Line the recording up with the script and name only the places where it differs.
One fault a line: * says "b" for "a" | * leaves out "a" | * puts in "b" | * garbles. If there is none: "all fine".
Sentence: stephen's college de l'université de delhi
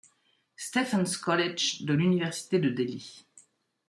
all fine